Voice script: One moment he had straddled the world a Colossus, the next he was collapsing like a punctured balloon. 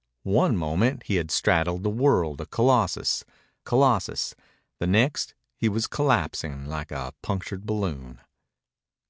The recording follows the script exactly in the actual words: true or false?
false